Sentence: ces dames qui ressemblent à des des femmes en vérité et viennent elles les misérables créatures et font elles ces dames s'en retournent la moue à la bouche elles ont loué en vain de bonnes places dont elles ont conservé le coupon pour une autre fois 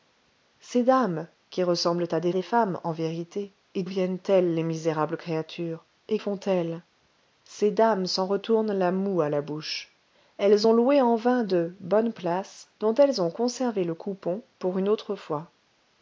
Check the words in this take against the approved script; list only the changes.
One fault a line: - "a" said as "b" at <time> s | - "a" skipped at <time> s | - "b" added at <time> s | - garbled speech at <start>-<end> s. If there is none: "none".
none